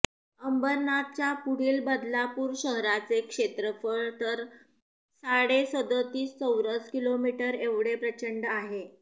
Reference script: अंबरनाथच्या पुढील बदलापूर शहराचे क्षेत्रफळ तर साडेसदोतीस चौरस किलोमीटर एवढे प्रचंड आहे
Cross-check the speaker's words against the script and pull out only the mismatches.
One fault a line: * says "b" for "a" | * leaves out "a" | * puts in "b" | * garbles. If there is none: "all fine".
all fine